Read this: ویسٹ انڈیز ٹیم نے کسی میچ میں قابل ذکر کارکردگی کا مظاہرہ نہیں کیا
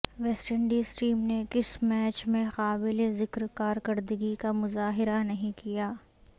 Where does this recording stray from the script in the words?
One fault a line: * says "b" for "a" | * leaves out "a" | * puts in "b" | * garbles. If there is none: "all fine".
all fine